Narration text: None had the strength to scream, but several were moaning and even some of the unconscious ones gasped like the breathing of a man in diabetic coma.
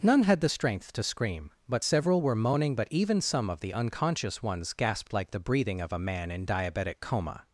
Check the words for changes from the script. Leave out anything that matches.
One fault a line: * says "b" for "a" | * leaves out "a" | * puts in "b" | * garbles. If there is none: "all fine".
* says "but" for "and"